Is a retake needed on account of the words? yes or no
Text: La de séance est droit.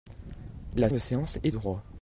no